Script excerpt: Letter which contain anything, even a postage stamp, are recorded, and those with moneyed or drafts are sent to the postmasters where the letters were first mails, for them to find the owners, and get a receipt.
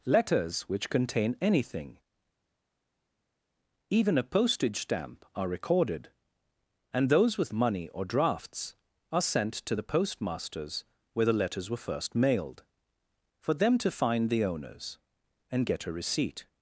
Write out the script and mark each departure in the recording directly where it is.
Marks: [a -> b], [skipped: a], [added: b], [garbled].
[Letter -> Letters] which contain anything, even a postage stamp, are recorded, and those with [moneyed -> money] or drafts are sent to the postmasters where the letters were first [mails, -> mailed] for them to find the owners, and get a receipt.